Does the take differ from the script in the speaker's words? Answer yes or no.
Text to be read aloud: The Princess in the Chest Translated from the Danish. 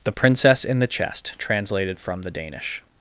no